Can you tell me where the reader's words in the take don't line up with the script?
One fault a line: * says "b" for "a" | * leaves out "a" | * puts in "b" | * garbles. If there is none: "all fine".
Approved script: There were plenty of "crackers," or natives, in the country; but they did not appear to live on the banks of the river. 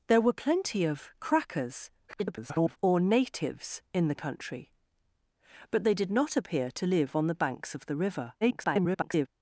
* garbles
* garbles